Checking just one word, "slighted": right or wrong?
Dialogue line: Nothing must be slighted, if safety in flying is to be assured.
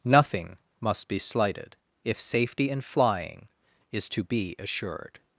right